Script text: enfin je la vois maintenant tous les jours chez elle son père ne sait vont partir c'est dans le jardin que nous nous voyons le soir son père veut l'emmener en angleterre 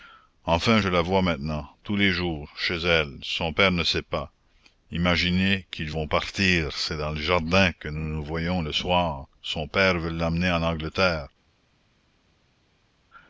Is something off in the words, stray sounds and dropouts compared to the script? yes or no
yes